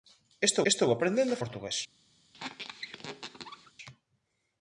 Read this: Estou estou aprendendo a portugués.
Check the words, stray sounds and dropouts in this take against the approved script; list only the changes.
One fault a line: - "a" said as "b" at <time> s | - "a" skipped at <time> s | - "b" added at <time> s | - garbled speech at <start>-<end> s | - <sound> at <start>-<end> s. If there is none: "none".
- squeak at 2.3-3.7 s